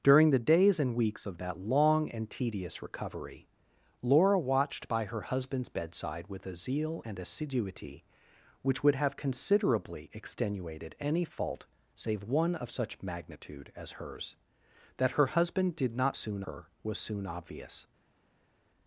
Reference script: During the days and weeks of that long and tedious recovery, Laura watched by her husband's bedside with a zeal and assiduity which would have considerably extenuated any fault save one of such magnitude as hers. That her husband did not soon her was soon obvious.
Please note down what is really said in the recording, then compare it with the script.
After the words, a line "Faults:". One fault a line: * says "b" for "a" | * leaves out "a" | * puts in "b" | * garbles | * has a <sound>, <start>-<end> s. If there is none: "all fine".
During the days and weeks of that long and tedious recovery, Laura watched by her husband's bedside with a zeal and assiduity which would have considerably extenuated any fault save one of such magnitude as hers. That her husband did not soon her was soon obvious.
Faults:
all fine